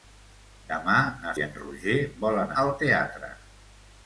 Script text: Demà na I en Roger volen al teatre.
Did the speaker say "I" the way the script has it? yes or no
yes